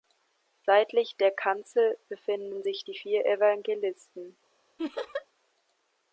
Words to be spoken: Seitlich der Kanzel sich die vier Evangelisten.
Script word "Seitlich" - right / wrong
right